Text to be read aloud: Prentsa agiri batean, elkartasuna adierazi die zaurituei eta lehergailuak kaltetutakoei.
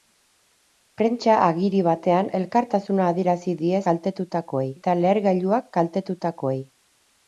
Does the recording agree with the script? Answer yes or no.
no